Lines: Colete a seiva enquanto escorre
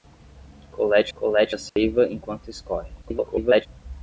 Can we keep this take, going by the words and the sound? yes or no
no